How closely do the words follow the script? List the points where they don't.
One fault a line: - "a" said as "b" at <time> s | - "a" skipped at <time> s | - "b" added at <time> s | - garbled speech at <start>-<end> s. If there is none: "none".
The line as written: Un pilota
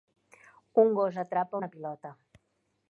- "gos atrapa una" added at 1.0 s